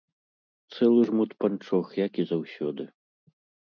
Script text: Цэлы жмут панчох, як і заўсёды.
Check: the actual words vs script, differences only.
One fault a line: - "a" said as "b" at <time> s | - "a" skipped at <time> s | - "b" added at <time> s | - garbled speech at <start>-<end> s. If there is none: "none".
none